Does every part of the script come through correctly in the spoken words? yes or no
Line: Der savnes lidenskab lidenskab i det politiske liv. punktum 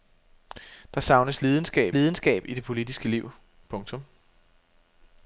yes